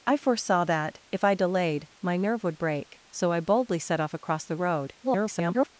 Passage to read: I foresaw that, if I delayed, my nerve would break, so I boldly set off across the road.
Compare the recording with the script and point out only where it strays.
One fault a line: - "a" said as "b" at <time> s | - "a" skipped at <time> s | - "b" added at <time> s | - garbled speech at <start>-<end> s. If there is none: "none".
- garbled speech at 5.0-5.7 s